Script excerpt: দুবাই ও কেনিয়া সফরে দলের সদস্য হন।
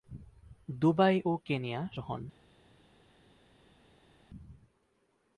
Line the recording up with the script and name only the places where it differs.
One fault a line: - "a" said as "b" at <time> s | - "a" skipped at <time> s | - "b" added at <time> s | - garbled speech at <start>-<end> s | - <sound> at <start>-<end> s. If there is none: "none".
- "সফরে দলের সদস্য" skipped at 1.8 s